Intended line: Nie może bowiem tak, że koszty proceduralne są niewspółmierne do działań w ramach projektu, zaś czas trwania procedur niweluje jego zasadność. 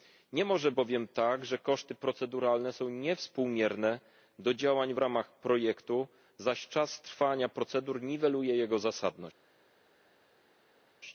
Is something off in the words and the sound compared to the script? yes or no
no